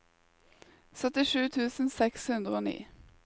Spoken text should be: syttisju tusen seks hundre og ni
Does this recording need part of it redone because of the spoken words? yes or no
no